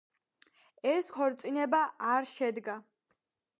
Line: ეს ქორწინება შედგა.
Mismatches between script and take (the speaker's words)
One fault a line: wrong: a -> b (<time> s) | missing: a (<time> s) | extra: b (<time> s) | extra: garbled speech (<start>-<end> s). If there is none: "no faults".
extra: არ (2.1 s)